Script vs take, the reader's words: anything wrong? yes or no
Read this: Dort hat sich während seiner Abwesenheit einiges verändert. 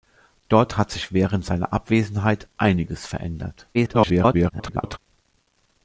yes